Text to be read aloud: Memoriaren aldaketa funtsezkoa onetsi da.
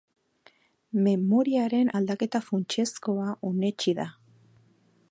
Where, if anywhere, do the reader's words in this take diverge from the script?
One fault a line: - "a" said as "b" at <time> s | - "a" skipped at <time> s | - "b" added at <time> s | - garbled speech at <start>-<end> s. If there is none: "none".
none